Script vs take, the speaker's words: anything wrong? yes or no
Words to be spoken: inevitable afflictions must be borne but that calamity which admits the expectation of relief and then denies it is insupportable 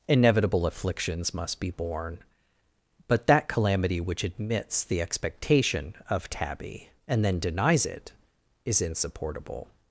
yes